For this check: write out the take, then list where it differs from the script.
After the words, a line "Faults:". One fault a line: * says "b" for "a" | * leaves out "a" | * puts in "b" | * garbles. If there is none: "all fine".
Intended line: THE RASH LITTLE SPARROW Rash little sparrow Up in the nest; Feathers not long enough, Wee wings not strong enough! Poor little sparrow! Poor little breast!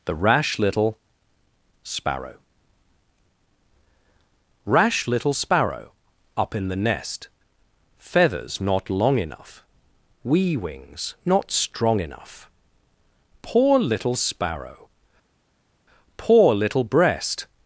THE RASH LITTLE SPARROW Rash little sparrow Up in the nest; Feathers not long enough, Wee wings not strong enough! Poor little sparrow! Poor little breast!
Faults:
all fine